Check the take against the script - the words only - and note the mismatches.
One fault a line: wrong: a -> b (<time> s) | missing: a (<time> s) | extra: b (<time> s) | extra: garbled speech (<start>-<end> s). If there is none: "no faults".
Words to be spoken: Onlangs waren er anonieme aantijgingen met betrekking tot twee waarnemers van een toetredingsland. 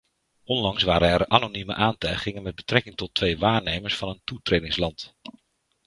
no faults